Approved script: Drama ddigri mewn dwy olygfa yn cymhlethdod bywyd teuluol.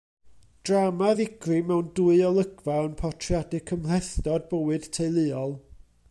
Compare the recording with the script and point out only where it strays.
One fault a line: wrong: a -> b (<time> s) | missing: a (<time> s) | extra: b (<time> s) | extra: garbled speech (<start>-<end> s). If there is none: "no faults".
extra: portreadu (3.0 s)